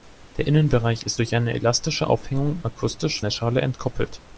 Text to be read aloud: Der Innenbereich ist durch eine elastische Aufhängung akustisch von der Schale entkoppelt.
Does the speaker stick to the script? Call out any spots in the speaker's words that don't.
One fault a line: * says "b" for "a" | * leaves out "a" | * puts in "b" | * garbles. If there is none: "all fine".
* leaves out "von"